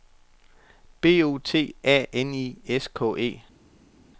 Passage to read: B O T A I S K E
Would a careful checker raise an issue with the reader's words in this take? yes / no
yes